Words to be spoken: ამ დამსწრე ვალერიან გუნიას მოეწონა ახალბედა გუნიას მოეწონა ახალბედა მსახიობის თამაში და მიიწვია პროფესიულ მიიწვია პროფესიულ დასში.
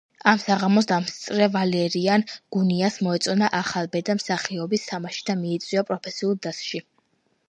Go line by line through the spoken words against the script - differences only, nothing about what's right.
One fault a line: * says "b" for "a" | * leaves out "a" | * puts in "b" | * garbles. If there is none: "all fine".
* puts in "საღამოს"
* leaves out "გუნიას მოეწონა ახალბედა"
* leaves out "მიიწვია პროფესიულ"